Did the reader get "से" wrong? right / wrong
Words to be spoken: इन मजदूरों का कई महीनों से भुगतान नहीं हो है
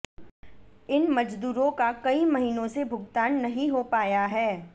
right